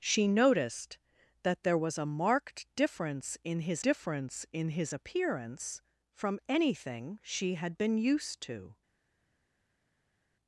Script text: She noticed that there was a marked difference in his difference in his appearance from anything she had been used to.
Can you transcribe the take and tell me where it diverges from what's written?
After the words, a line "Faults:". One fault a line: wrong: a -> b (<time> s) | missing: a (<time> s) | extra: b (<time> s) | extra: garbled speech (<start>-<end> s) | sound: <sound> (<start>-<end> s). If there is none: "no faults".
She noticed that there was a marked difference in his difference in his appearance from anything she had been used to.
Faults:
no faults